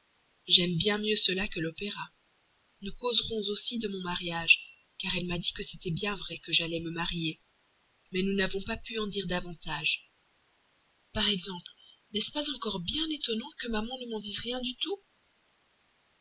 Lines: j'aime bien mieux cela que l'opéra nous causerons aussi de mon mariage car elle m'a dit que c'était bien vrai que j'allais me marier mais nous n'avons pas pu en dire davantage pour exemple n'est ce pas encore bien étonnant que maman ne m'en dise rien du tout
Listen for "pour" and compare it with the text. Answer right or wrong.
wrong